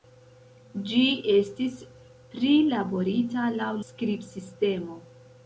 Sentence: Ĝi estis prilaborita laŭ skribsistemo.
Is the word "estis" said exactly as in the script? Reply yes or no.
yes